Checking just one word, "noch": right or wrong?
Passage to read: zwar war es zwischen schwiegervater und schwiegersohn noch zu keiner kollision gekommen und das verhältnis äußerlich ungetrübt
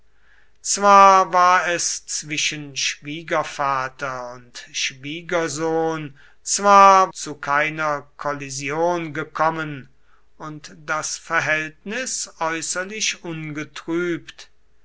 wrong